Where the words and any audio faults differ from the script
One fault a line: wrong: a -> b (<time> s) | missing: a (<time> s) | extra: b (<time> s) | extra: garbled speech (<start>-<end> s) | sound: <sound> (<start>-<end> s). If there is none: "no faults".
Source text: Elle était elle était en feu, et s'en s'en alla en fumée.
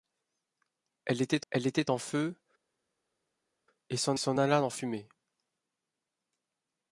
no faults